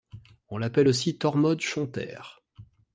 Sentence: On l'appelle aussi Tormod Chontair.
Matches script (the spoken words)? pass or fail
pass